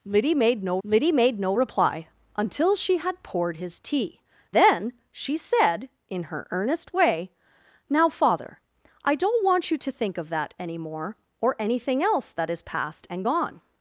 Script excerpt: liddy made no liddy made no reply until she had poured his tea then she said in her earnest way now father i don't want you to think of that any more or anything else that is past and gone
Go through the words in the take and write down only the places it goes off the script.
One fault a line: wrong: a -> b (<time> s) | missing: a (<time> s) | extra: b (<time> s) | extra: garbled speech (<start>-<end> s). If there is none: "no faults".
no faults